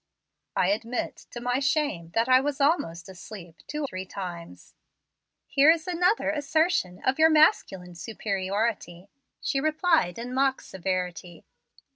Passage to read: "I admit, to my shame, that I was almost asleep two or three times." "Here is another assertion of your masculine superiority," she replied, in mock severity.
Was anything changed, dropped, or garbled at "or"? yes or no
yes